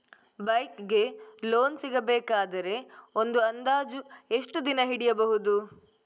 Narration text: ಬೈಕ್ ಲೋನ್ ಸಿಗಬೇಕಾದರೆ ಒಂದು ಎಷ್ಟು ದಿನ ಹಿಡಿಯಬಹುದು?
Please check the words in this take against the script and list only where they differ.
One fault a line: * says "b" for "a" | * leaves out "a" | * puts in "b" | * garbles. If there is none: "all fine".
* puts in "ಗೆ"
* puts in "ಅಂದಾಜು"